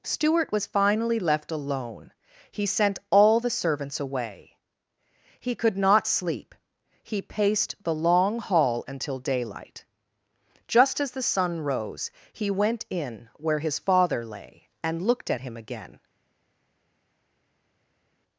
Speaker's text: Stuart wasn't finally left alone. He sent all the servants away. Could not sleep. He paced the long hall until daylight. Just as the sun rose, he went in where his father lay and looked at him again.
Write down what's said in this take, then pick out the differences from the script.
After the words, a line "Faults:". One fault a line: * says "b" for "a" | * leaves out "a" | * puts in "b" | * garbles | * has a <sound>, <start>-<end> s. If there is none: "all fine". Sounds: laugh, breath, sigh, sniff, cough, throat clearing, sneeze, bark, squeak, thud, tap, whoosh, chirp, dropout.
Stuart was finally left alone. He sent all the servants away. He could not sleep. He paced the long hall until daylight. Just as the sun rose, he went in where his father lay and looked at him again.
Faults:
* says "was" for "wasn't"
* puts in "He"